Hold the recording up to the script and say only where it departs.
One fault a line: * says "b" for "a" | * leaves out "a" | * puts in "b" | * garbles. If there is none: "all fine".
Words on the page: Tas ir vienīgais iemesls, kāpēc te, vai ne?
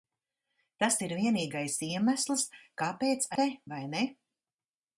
all fine